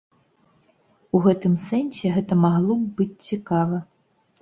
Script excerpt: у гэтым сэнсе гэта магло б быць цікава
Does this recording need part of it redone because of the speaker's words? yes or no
no